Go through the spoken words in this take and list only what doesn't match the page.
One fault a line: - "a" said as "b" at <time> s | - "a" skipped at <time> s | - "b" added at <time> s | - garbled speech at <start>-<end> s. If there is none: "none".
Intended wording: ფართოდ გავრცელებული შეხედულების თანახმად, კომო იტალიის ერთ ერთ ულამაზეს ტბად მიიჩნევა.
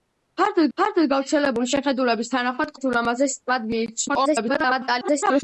- "ფართოდ" added at 0.8 s
- "კომო იტალიის ერთ" skipped at 2.7 s
- garbled speech at 4.1-5.4 s